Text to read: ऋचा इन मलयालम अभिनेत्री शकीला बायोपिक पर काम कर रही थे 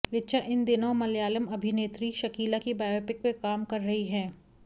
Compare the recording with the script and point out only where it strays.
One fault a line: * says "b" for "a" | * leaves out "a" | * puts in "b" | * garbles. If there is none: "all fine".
* puts in "दिनों"
* puts in "की"
* says "हैं" for "थे"